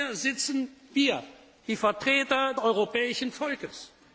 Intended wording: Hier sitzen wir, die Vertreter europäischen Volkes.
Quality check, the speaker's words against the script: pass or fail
pass